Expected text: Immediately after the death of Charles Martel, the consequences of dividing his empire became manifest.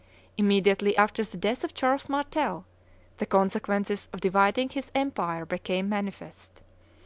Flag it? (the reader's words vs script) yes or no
no